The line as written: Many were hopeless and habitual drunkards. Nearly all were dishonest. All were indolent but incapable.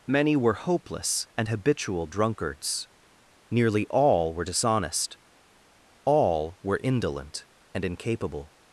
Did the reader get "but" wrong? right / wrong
wrong